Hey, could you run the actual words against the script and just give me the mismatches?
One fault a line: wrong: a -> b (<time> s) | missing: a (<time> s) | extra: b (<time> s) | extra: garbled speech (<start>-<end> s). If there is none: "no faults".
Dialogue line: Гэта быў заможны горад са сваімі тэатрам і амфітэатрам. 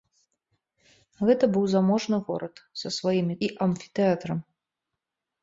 missing: тэатрам (3.4 s)